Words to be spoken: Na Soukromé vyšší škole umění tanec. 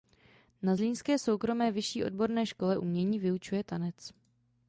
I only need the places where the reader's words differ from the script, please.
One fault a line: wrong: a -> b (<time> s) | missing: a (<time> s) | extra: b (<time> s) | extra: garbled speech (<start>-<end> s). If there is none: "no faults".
extra: Zlínské (0.7 s)
extra: odborné (2.0 s)
extra: vyučuje (3.2 s)